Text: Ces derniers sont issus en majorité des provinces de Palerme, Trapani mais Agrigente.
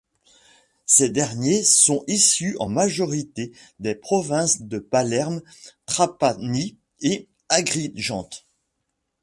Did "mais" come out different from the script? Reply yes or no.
yes